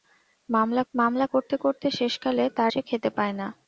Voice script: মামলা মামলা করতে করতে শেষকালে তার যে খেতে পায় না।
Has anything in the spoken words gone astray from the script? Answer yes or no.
no